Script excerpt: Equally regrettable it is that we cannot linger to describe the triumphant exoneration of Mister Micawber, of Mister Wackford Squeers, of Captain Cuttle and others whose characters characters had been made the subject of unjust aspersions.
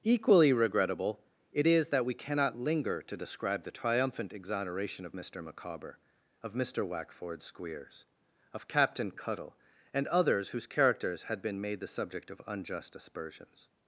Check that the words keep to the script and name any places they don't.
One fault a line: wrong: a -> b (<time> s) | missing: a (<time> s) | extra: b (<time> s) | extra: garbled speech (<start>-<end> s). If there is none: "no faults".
missing: characters (11.2 s)